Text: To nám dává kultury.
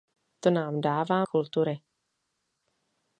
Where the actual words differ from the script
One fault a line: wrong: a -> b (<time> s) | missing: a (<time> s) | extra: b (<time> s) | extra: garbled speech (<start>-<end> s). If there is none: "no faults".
no faults